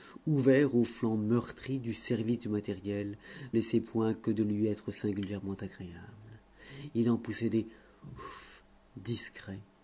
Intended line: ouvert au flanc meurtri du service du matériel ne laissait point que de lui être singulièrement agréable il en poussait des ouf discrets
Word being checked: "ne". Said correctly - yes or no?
no